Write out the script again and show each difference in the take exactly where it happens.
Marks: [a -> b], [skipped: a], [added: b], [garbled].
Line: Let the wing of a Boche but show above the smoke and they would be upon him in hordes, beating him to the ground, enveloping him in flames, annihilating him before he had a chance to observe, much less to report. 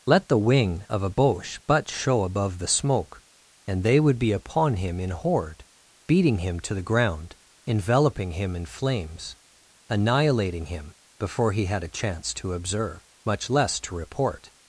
Let the wing of a Boche but show above the smoke and they would be upon him in [hordes, -> horde] beating him to the ground, enveloping him in flames, annihilating him before he had a chance to observe, much less to report.